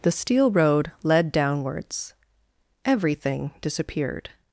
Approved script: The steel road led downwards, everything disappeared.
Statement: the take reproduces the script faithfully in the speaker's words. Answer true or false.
true